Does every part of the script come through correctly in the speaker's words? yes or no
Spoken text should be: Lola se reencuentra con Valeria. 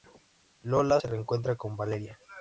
yes